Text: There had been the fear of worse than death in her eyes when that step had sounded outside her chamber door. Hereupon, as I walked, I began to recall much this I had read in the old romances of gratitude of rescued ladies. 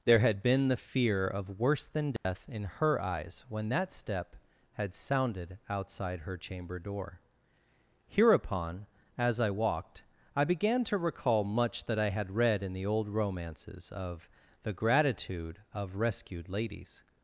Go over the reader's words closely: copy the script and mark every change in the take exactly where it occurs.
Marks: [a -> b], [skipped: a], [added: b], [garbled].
There had been the fear of worse than death in her eyes when that step had sounded outside her chamber door. Hereupon, as I walked, I began to recall much [this -> that] I had read in the old romances of [added: the] gratitude of rescued ladies.